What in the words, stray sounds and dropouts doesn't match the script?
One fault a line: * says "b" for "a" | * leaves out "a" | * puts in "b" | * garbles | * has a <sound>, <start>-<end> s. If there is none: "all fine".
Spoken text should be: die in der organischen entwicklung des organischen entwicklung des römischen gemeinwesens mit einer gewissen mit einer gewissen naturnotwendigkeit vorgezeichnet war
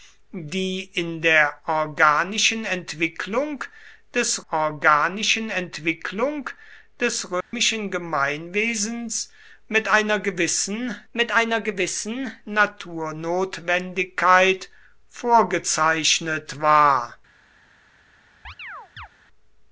* has a dropout, 7.4-7.5 s
* has a chirp, 18.4-19.1 s